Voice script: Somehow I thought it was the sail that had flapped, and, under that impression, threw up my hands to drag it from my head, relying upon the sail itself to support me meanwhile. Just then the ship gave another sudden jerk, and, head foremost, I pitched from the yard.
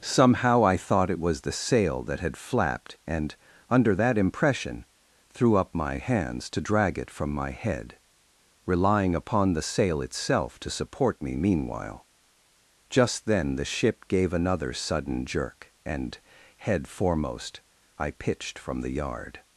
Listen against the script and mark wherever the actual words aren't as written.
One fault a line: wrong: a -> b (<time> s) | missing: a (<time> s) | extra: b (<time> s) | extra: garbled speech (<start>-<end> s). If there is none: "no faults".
no faults